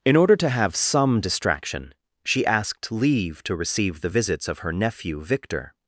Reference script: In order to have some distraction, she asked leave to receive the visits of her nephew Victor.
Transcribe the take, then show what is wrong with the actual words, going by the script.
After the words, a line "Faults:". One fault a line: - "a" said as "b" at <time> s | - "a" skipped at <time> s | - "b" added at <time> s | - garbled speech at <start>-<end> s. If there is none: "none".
In order to have some distraction, she asked leave to receive the visits of her nephew Victor.
Faults:
none